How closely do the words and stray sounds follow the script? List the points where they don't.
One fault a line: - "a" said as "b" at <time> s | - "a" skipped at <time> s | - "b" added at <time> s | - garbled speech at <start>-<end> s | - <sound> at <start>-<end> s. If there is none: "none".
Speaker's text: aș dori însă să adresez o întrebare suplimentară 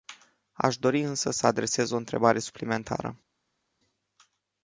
none